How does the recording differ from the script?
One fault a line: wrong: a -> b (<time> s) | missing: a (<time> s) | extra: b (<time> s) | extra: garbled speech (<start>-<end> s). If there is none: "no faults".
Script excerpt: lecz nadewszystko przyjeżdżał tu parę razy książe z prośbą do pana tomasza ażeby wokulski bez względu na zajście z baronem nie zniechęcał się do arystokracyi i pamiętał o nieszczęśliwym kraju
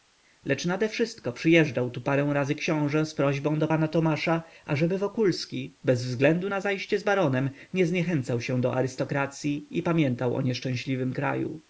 no faults